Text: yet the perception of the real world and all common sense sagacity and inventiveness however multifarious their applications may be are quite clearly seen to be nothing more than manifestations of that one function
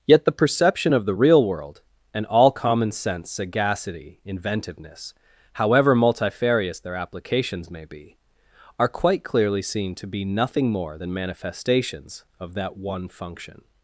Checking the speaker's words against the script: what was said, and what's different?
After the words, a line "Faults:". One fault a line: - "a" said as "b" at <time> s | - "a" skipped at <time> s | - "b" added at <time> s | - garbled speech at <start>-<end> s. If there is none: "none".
yet the perception of the real world and all common sense sagacity inventiveness however multifarious their applications may be are quite clearly seen to be nothing more than manifestations of that one function
Faults:
- "and" skipped at 4.2 s